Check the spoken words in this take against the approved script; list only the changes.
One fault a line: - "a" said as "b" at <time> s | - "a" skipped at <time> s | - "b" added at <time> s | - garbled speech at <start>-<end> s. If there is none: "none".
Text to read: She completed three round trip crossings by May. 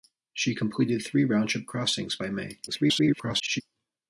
- garbled speech at 2.7-3.6 s